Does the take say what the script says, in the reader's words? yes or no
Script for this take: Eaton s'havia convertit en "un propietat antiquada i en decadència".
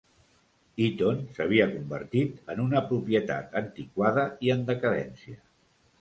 no